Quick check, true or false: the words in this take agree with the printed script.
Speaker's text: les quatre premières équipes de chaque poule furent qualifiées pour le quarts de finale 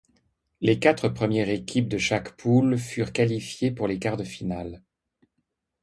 false